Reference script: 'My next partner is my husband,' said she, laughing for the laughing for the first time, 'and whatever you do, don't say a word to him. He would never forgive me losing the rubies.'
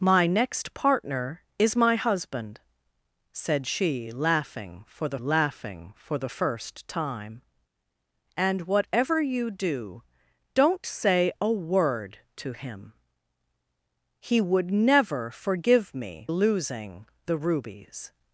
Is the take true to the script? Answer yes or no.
yes